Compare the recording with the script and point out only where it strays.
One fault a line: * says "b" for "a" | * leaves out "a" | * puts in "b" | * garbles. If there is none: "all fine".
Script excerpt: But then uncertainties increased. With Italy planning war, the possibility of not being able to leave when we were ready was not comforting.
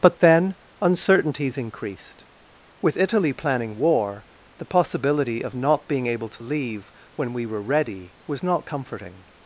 all fine